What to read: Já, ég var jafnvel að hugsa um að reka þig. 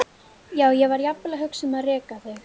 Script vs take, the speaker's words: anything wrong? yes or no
no